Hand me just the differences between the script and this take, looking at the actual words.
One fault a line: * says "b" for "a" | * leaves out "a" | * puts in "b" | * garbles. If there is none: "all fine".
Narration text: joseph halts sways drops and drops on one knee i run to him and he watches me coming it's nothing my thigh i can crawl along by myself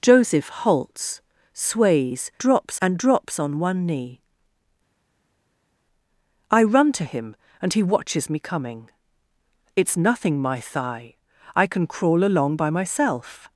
all fine